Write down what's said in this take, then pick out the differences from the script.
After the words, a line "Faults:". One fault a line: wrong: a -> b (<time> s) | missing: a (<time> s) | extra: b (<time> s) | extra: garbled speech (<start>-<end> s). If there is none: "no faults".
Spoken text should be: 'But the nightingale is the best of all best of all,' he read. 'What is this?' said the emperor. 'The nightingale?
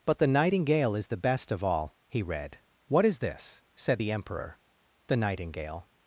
'But the nightingale is the best of all,' he read. 'What is this?' said the emperor. 'The nightingale?
Faults:
missing: best of all (1.9 s)